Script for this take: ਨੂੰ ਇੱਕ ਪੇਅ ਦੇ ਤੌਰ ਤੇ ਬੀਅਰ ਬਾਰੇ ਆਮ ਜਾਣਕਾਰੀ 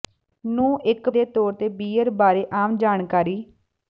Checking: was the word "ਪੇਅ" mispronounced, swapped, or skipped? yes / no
yes